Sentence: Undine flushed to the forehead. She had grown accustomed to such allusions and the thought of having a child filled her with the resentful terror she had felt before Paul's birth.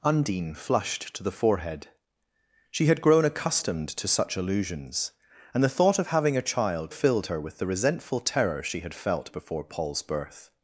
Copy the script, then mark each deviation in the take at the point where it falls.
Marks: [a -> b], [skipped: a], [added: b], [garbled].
Undine flushed to the forehead. She had grown accustomed to such allusions and the thought of having a child filled her with the resentful terror she had felt before Paul's birth.